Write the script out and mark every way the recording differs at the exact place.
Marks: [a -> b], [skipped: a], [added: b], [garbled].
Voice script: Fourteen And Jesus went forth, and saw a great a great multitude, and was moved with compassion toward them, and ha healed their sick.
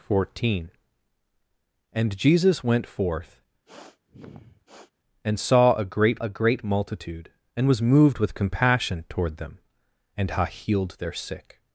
Fourteen And Jesus went forth, and saw a great a great multitude, and was moved with compassion toward them, and ha healed their sick.